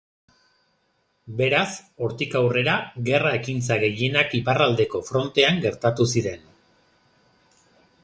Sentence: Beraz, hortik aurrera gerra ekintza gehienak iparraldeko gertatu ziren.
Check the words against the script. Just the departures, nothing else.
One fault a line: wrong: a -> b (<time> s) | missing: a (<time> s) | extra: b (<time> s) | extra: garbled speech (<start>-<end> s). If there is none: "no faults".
extra: frontean (5.1 s)